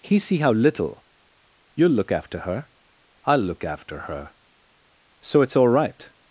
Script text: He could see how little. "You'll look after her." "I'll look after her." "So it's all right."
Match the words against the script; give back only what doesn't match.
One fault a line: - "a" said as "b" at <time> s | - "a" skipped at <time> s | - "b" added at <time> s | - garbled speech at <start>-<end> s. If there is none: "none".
- "could" skipped at 0.2 s